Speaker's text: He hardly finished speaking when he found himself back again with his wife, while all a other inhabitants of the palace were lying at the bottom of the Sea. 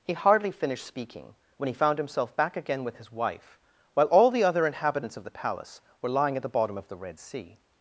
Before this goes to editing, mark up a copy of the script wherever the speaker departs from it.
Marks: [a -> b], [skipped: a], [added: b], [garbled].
He hardly finished speaking when he found himself back again with his wife, while all [a -> the] other inhabitants of the palace were lying at the bottom of the [added: Red] Sea.